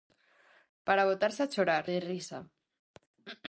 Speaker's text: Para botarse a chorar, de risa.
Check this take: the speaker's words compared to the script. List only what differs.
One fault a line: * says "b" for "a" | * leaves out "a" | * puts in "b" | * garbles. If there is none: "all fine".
all fine